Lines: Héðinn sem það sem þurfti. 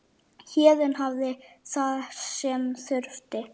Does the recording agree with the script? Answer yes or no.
no